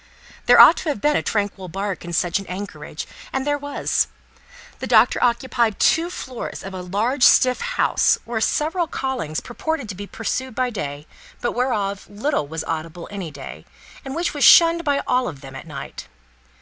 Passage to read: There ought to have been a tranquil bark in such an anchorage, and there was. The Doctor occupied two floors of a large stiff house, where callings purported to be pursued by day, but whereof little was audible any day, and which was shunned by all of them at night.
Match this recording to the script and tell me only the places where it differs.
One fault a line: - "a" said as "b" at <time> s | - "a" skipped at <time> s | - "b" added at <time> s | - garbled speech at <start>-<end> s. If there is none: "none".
- "several" added at 8.4 s